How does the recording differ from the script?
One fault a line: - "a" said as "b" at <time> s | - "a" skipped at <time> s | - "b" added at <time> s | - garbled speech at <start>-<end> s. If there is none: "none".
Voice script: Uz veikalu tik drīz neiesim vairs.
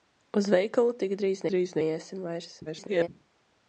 - "drīz" added at 1.5 s
- garbled speech at 2.7-3.1 s